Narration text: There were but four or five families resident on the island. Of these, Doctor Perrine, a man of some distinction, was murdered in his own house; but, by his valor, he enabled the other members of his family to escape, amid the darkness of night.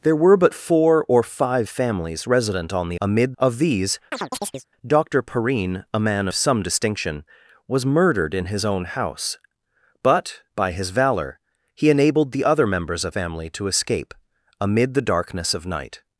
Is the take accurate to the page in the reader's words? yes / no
no